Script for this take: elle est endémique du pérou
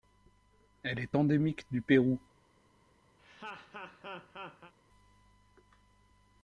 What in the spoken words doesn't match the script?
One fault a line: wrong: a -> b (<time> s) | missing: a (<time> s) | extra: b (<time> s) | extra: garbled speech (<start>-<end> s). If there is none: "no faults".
no faults